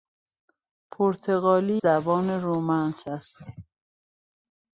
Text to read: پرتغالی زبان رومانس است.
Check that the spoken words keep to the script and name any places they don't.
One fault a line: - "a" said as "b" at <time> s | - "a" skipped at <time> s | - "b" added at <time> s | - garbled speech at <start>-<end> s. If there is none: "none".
none